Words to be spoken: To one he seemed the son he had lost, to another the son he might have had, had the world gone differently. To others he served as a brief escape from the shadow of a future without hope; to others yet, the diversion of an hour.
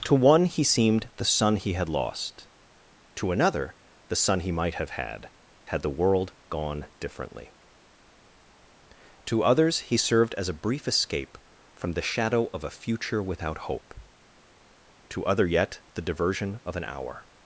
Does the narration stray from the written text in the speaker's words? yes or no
yes